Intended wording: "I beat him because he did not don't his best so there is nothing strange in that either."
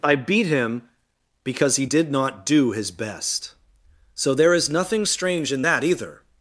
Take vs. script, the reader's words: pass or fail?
fail